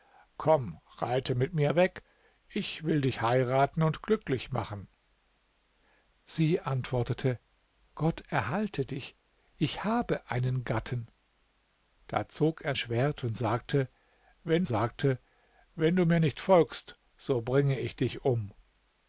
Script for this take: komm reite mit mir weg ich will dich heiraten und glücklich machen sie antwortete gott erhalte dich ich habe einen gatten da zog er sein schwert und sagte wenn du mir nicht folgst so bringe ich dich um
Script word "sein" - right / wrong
wrong